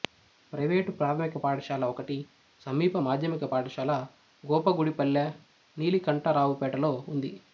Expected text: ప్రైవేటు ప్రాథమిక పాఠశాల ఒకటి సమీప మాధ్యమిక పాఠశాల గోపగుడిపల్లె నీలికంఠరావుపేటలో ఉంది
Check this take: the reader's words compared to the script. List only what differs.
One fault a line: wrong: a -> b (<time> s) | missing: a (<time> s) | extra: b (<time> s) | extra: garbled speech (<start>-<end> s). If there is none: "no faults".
no faults